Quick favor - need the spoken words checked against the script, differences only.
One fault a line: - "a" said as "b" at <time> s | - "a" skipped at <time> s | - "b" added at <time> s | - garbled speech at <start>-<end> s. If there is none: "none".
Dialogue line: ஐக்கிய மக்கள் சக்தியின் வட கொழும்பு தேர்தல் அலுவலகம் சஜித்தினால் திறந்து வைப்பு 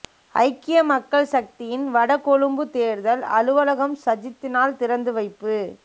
none